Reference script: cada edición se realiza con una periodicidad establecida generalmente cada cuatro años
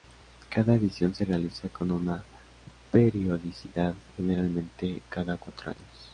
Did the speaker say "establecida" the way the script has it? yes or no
no